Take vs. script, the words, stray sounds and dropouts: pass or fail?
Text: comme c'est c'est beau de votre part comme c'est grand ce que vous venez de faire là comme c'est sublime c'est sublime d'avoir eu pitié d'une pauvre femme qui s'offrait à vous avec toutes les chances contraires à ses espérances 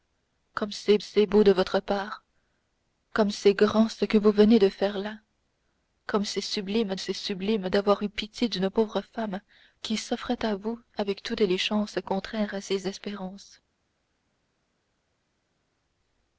pass